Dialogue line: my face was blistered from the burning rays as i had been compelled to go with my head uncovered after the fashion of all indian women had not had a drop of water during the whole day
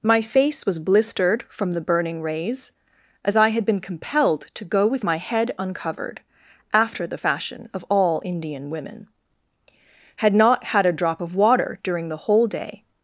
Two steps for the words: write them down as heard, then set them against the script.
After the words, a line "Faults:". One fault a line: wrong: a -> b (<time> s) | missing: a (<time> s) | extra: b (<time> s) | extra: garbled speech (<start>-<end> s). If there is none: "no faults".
my face was blistered from the burning rays as i had been compelled to go with my head uncovered after the fashion of all indian women had not had a drop of water during the whole day
Faults:
no faults